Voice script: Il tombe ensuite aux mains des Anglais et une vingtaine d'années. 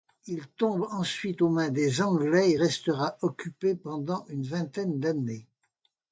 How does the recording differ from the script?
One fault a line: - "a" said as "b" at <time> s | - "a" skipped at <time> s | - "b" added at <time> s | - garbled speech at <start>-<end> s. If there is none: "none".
- "restera occupé pendant" added at 2.5 s